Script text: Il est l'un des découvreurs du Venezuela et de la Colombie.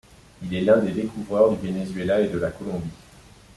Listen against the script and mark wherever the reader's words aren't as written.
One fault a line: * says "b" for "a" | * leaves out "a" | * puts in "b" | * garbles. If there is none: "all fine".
all fine